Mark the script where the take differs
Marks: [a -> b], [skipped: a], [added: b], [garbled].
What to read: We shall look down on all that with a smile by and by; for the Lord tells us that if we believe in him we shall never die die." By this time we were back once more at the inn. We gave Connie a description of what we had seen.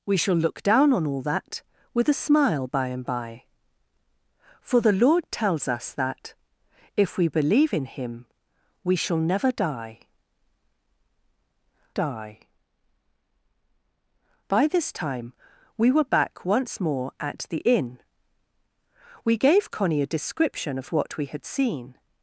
We shall look down on all that with a smile by and by; for the Lord tells us that if we believe in him we shall never die die." By this time we were back once more at the inn. We gave Connie a description of what we had seen.